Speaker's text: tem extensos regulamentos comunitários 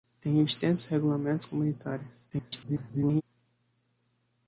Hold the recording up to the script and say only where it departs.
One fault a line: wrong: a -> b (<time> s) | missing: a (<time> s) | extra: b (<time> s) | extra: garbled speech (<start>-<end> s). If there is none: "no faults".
extra: garbled speech (2.3-3.2 s)